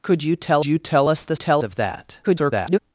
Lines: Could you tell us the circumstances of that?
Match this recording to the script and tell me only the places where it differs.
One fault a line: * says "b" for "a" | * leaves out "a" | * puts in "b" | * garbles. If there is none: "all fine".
* puts in "you tell"
* says "tell" for "circumstances"
* garbles